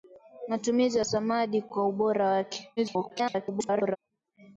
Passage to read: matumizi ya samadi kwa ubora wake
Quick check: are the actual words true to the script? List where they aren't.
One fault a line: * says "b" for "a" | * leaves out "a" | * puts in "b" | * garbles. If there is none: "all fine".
* garbles